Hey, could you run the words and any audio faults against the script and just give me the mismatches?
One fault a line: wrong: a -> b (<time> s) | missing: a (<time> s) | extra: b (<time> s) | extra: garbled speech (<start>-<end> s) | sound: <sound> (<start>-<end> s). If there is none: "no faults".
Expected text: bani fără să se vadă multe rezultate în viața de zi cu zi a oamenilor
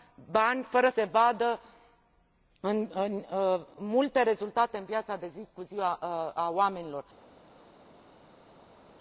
missing: să (0.9 s)